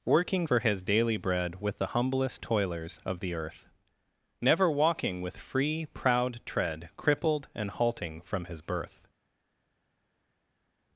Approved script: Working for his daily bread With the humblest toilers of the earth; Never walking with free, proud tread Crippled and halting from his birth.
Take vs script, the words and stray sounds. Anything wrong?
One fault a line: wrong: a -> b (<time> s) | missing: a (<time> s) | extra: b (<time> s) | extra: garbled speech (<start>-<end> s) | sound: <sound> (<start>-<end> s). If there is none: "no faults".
no faults